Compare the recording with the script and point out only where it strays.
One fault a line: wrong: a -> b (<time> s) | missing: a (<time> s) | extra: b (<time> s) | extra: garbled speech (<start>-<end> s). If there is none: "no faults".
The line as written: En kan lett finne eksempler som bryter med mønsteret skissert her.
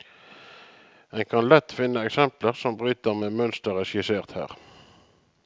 no faults